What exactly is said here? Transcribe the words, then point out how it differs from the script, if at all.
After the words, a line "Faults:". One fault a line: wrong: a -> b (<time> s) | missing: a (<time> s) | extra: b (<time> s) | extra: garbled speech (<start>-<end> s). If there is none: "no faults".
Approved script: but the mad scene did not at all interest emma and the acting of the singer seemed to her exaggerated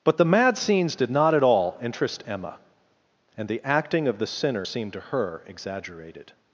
but the mad scenes did not at all interest emma and the acting of the sinner seemed to her exaggerated
Faults:
wrong: scene -> scenes (0.6 s)
wrong: singer -> sinner (4.3 s)